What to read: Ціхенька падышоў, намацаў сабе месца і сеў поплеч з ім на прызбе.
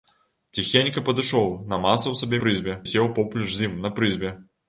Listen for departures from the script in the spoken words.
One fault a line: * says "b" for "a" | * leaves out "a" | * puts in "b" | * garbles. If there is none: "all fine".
* says "прызбе" for "месца"